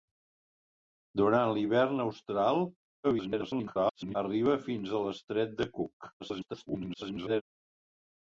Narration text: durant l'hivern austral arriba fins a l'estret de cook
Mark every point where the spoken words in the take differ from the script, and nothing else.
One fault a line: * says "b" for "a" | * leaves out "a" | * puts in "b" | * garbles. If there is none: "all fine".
* garbles
* garbles